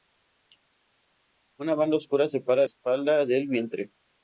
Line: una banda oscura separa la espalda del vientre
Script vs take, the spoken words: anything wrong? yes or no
yes